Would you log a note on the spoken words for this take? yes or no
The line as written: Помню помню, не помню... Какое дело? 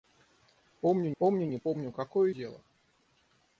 no